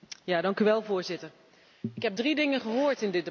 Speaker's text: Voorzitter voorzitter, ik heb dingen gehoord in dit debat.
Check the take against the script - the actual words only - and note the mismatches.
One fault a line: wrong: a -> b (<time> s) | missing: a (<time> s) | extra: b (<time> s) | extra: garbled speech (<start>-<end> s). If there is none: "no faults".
missing: voorzitter (1.3 s)
extra: drie (2.2 s)